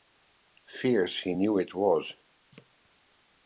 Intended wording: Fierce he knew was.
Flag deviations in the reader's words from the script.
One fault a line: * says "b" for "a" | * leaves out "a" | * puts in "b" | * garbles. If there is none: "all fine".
* puts in "it"